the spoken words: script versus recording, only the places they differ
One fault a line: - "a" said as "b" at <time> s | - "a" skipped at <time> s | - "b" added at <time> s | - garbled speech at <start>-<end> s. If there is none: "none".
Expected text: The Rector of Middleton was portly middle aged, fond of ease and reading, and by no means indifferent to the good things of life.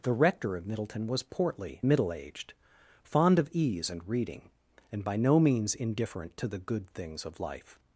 none